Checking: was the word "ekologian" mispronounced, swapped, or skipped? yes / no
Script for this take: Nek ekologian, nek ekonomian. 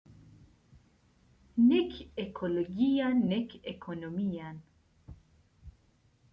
no